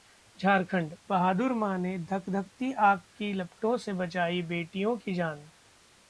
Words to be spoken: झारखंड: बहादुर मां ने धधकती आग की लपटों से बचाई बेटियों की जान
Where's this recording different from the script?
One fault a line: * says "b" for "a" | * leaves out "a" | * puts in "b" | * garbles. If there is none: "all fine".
all fine